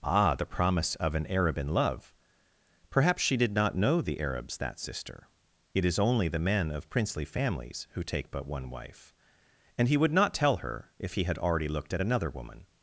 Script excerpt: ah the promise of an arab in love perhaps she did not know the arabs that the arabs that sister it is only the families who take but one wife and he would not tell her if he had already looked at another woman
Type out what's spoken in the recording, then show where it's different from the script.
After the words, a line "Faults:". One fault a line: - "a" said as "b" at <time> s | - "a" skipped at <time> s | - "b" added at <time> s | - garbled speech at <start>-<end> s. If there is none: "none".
ah the promise of an arab in love perhaps she did not know the arabs that sister it is only the men of princely families who take but one wife and he would not tell her if he had already looked at another woman
Faults:
- "the arabs that" skipped at 4.8 s
- "men of princely" added at 6.4 s